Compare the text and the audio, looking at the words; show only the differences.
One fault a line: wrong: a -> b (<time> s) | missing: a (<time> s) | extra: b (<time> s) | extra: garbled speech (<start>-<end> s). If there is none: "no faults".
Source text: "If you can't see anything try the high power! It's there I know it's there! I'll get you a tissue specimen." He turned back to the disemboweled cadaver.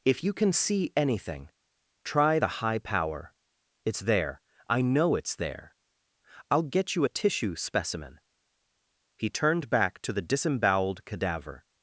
wrong: can't -> can (0.3 s)